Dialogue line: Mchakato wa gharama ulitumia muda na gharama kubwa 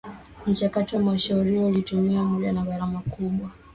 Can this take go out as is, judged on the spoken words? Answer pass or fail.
fail